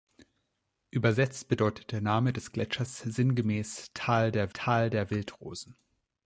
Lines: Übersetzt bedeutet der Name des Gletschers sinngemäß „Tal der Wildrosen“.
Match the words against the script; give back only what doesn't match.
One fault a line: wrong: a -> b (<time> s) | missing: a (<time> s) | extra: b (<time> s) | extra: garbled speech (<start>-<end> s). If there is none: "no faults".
extra: tal der (4.5 s)